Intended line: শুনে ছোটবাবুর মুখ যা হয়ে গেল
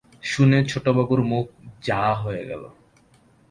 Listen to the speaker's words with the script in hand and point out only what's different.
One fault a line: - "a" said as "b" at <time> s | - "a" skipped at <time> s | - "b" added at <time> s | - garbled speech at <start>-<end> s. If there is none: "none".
none